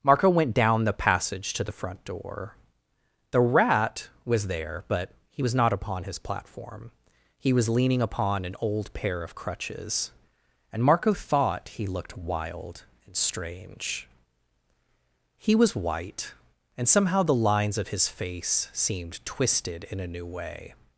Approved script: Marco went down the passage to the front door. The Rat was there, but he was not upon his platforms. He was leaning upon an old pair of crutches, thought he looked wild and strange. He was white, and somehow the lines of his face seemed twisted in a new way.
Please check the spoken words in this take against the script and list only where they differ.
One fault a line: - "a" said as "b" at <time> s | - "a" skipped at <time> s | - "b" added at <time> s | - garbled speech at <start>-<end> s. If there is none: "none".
- "platforms" said as "platform" at 6.2 s
- "and Marco" added at 10.7 s